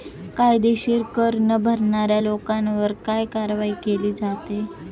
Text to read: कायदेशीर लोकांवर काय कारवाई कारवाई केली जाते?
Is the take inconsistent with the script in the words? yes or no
yes